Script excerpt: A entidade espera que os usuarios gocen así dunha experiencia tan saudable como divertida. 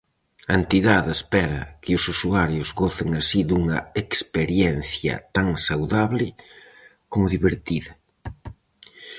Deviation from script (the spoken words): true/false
false